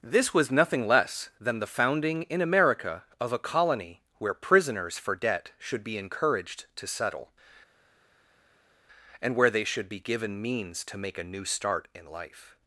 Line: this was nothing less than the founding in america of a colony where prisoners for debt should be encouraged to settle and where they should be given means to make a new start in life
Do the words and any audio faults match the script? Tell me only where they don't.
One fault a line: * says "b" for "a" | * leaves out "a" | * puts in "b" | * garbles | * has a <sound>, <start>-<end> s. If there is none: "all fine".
all fine